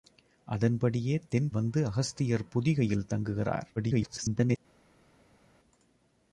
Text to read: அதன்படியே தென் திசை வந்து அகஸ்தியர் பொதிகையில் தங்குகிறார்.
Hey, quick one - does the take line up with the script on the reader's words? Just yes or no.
no